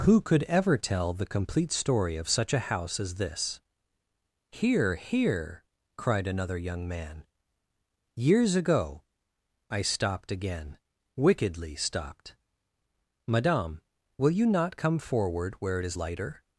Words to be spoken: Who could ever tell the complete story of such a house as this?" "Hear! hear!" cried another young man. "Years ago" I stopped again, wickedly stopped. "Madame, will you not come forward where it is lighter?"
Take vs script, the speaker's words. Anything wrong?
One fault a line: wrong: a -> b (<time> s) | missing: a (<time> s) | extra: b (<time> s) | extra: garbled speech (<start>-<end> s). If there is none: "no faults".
no faults